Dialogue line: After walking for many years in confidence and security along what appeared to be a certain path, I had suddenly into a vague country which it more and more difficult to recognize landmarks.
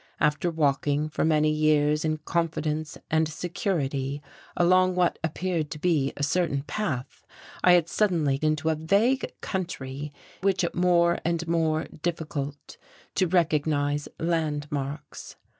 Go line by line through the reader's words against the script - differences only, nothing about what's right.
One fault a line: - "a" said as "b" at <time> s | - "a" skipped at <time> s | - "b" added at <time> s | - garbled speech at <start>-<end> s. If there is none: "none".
none